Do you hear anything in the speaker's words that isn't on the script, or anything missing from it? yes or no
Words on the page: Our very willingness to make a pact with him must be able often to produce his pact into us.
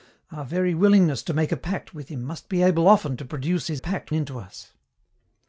no